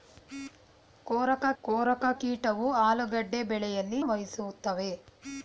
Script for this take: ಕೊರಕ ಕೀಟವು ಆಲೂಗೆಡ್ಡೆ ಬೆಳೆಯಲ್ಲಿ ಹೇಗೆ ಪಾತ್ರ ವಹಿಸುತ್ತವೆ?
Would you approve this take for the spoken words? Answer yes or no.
no